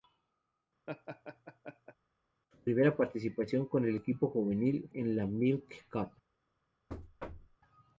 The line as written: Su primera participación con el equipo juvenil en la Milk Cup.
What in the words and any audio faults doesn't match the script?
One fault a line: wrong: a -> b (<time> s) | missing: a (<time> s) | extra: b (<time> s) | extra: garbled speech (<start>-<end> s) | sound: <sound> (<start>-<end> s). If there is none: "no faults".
sound: laugh (0.9-2.0 s)
sound: thud (6.9-7.6 s)